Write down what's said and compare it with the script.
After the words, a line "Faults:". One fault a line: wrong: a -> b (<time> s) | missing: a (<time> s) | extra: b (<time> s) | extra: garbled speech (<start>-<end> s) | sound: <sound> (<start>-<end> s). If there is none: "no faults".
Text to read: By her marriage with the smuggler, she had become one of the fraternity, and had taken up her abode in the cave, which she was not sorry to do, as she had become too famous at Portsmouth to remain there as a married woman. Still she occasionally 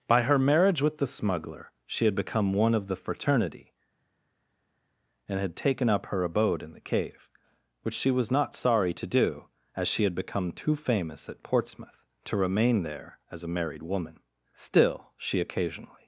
By her marriage with the smuggler, she had become one of the fraternity, and had taken up her abode in the cave, which she was not sorry to do, as she had become too famous at Portsmouth to remain there as a married woman. Still she occasionally
Faults:
no faults